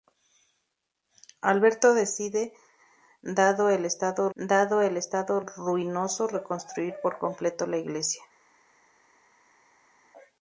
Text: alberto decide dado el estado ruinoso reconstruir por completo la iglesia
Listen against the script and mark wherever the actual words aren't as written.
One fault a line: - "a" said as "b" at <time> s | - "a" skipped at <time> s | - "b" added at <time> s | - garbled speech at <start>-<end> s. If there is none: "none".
- "dado el estado" added at 4.3 s